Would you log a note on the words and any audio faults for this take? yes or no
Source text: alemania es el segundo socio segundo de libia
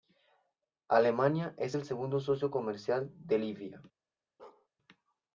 yes